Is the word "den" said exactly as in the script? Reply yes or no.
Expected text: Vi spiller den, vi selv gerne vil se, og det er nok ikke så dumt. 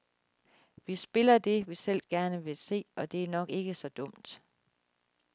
no